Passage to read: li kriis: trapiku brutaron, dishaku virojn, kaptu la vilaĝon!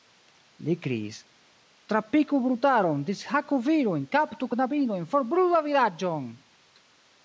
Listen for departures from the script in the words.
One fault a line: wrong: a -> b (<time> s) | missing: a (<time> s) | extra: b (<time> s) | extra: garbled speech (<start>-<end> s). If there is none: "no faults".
extra: knabinojn forbrulu (4.5 s)